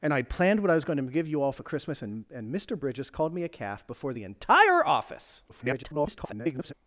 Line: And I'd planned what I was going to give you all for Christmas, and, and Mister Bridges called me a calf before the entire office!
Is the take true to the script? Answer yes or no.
no